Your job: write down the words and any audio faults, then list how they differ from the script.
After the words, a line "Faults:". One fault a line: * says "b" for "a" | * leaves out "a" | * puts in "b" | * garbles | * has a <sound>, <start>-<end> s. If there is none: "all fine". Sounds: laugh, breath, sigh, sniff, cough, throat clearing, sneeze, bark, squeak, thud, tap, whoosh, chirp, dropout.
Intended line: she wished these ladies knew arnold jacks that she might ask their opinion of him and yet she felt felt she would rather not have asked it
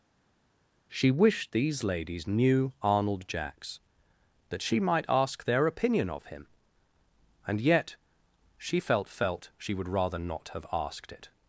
she wished these ladies knew arnold jacks that she might ask their opinion of him and yet she felt felt she would rather not have asked it
Faults:
all fine